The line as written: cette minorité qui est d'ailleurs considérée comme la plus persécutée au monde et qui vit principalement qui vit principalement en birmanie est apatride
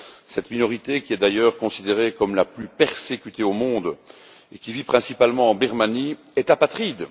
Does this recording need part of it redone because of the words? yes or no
yes